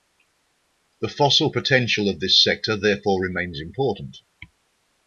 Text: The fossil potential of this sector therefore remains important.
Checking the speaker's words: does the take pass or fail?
pass